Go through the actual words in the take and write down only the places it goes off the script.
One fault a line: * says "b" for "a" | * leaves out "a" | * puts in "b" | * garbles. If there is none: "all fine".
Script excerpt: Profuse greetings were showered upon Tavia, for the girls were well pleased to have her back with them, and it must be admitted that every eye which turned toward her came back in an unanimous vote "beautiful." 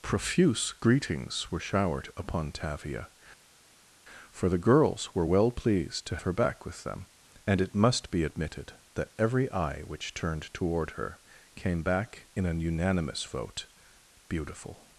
* leaves out "have"